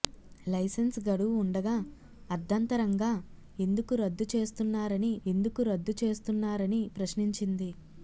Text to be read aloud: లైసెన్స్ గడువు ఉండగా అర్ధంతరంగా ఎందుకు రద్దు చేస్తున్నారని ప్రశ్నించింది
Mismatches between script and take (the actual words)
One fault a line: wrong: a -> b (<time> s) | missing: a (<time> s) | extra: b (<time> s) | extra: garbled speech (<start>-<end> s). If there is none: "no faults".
extra: ఎందుకు రద్దు చేస్తున్నారని (5.3 s)